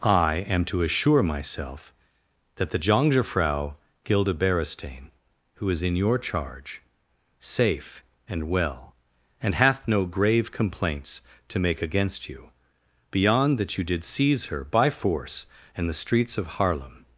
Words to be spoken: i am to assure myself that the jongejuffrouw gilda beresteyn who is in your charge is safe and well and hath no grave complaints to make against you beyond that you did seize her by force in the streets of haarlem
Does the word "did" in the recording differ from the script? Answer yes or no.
no